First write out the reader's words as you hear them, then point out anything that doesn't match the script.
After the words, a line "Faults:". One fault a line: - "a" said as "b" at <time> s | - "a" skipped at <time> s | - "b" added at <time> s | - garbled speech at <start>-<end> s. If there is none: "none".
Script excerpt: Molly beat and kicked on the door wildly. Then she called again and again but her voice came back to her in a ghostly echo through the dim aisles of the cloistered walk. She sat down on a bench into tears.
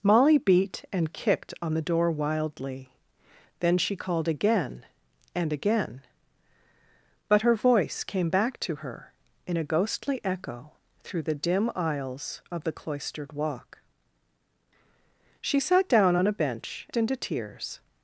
Molly beat and kicked on the door wildly. Then she called again and again but her voice came back to her in a ghostly echo through the dim aisles of the cloistered walk. She sat down on a bench into tears.
Faults:
none